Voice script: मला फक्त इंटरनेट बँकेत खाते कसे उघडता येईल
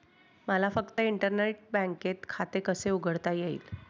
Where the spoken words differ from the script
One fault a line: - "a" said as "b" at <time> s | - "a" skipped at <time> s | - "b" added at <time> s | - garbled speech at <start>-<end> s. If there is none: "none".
none